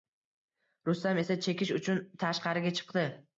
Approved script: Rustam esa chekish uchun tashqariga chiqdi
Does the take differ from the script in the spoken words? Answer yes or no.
no